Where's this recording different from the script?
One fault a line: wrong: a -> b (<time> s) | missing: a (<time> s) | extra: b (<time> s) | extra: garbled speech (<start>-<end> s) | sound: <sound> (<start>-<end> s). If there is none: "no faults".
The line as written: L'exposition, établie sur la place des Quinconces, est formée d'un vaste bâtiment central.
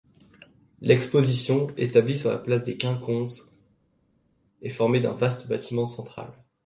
no faults